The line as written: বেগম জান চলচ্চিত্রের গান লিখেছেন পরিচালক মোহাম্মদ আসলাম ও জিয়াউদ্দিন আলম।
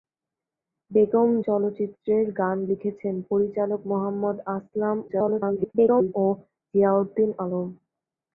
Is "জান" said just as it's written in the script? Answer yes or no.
no